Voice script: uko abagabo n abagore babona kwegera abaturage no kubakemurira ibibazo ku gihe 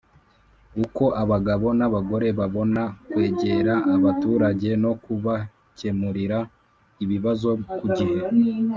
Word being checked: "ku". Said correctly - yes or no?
yes